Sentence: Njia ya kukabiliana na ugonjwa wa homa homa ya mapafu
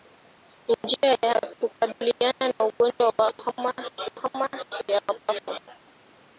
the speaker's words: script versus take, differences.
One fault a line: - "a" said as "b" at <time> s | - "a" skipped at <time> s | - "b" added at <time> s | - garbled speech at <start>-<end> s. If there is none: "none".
none